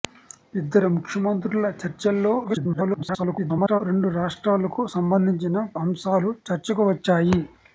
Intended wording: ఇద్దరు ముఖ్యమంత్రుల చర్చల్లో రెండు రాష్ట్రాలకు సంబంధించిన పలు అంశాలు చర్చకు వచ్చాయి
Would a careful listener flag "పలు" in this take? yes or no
yes